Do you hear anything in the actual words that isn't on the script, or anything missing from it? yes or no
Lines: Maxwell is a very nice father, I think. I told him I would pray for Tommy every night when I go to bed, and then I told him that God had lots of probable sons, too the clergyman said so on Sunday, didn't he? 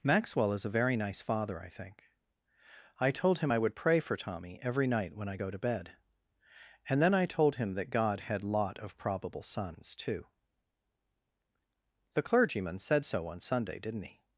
yes